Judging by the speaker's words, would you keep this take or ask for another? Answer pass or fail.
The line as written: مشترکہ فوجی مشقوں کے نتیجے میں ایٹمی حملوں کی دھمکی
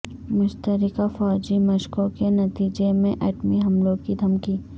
pass